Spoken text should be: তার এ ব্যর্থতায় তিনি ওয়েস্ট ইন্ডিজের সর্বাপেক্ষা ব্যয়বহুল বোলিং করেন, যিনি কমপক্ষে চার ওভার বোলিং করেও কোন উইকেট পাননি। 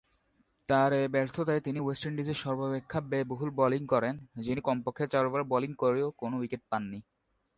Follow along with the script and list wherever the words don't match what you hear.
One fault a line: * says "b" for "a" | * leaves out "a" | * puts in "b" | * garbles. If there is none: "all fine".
all fine